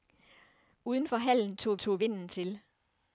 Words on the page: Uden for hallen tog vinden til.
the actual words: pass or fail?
fail